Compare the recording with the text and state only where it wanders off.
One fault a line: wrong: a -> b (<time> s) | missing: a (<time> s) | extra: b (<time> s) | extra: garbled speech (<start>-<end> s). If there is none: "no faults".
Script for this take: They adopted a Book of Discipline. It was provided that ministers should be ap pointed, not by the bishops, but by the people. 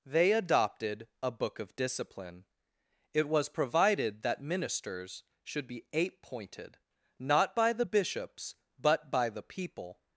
wrong: ap -> eight (5.9 s)